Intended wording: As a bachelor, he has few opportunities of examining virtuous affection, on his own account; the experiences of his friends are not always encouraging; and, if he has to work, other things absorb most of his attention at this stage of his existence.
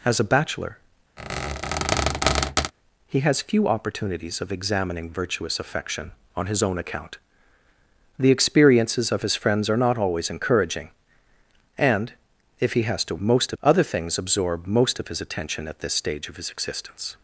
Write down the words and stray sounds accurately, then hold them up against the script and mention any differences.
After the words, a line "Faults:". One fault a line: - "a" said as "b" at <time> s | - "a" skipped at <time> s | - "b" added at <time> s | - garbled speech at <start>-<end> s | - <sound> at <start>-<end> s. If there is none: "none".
As a bachelor, he has few opportunities of examining virtuous affection, on his own account; the experiences of his friends are not always encouraging; and, if he has to most, other things absorb most of his attention at this stage of his existence.
Faults:
- squeak at 1.2-2.7 s
- "work" said as "most" at 13.2 s